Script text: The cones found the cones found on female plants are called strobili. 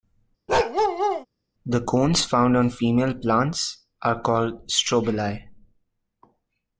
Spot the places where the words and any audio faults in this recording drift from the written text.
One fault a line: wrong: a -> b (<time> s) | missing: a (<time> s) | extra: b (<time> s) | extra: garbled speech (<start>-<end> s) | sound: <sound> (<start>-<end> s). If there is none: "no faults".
sound: bark (0.5-1.3 s)
missing: the cones found (2.6 s)